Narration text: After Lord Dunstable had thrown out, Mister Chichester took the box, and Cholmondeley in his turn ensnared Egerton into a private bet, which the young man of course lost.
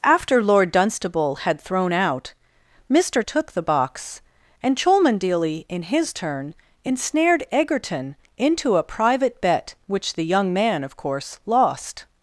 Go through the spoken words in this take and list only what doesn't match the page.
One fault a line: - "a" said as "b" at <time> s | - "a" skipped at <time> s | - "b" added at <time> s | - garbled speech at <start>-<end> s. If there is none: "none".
- "Chichester" skipped at 3.2 s